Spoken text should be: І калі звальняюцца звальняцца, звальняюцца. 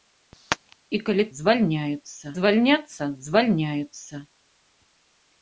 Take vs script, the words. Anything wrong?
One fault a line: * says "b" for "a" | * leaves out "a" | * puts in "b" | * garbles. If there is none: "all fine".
all fine